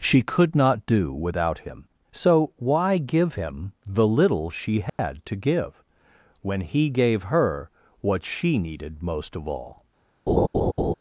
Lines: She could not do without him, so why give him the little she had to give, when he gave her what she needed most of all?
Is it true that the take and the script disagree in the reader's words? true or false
false